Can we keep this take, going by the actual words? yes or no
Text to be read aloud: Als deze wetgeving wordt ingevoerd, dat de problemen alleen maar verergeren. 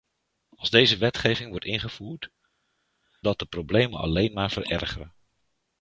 yes